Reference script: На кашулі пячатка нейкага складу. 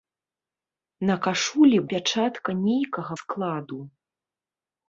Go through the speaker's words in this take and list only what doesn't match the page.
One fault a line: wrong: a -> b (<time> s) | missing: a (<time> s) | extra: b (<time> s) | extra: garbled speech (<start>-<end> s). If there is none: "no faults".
no faults